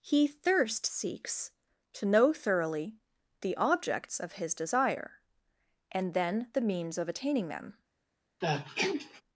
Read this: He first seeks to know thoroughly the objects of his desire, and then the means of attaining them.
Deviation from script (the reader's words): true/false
true